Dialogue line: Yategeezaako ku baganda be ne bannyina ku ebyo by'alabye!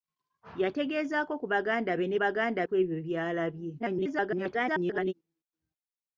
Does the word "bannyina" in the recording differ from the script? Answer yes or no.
yes